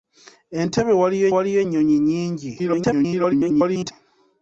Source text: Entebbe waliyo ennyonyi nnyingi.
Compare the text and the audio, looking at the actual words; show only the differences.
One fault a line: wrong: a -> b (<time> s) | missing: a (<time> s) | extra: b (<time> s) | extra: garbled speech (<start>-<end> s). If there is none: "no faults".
extra: waliyo (1.3 s)
extra: garbled speech (2.6-3.9 s)